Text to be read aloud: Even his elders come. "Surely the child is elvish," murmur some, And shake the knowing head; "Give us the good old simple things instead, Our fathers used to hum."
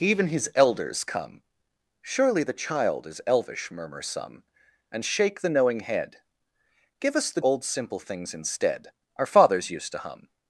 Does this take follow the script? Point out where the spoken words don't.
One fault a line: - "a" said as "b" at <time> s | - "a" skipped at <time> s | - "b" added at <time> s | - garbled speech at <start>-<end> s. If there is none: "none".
- "good" skipped at 7.4 s